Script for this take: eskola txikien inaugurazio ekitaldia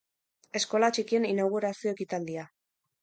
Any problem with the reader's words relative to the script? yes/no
no